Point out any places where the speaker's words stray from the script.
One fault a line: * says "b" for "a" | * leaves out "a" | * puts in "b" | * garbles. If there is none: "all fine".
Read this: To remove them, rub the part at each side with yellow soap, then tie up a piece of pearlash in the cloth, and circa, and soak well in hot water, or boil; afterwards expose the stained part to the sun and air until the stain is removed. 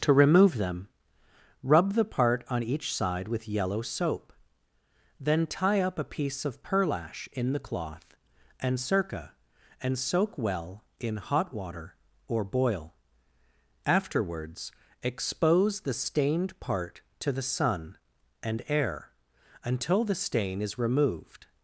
* says "on" for "at"